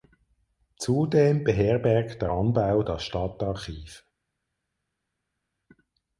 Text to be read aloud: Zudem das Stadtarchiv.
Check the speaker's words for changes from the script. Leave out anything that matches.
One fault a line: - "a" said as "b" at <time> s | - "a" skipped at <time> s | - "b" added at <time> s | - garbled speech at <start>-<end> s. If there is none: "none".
- "beherbergt der Anbau" added at 1.4 s